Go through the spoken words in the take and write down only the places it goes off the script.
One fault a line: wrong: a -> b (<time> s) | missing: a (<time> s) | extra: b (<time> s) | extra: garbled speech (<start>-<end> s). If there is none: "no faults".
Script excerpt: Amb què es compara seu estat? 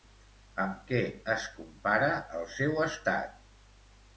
extra: el (2.4 s)